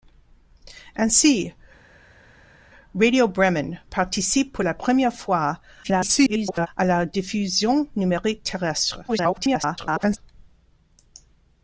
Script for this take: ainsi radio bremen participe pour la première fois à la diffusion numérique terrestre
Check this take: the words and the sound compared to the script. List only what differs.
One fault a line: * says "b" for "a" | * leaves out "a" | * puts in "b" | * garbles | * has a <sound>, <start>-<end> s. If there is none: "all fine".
* garbles
* garbles